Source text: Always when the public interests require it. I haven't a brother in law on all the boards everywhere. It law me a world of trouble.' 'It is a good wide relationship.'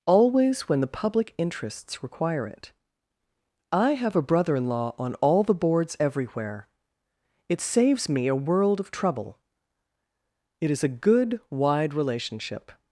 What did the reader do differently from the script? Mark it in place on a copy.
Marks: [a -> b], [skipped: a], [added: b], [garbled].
Always when the public interests require it. I [haven't -> have] a brother in law on all the boards everywhere. It [law -> saves] me a world of trouble.' 'It is a good wide relationship.'